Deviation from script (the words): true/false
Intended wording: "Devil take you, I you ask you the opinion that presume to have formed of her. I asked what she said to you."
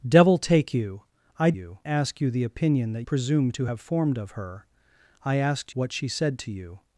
false